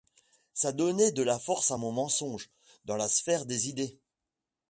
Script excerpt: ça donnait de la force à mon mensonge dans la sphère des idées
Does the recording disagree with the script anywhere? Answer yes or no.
no